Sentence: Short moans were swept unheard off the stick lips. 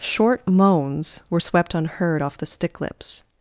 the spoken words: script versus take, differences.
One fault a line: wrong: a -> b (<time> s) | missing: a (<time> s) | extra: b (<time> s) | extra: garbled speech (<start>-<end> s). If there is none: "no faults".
no faults